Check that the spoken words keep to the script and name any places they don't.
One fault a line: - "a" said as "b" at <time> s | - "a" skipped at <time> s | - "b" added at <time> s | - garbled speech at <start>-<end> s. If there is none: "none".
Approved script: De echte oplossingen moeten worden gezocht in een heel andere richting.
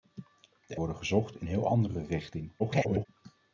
- "echte oplossingen moeten" skipped at 0.8 s
- "een" skipped at 1.5 s
- garbled speech at 2.6-3.1 s